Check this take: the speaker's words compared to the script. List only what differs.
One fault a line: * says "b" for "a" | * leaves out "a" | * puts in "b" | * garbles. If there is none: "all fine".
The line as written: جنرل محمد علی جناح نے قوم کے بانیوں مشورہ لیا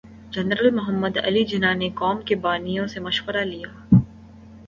* puts in "سے"